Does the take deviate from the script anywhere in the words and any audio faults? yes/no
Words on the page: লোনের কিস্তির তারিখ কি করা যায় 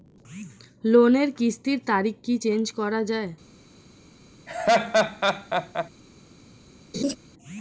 yes